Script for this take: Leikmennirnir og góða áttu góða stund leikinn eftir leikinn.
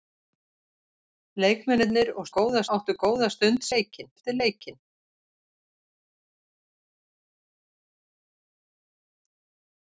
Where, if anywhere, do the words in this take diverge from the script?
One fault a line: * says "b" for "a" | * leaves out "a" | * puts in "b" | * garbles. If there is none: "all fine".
all fine